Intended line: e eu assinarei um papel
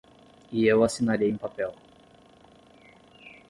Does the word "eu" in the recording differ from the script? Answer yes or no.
no